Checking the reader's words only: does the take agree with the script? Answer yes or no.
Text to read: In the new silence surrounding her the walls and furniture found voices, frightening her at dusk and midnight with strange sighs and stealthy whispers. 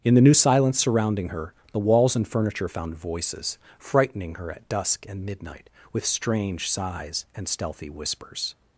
yes